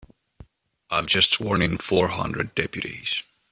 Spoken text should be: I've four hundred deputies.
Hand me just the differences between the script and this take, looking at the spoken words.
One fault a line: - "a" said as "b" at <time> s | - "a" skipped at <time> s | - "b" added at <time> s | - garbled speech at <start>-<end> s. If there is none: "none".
- "just sworn in" added at 1.1 s